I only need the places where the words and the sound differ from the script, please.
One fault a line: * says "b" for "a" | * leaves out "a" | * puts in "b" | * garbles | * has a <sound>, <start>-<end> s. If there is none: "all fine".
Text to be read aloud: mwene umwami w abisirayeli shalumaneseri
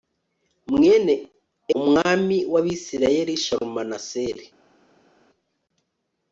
all fine